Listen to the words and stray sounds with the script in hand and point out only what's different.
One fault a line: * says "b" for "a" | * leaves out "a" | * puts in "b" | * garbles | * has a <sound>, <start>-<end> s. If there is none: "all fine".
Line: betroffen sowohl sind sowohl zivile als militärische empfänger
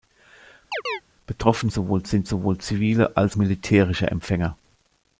* has a chirp, 0.7-1.0 s